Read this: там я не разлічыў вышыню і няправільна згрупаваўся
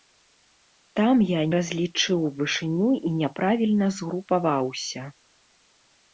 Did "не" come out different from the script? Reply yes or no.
yes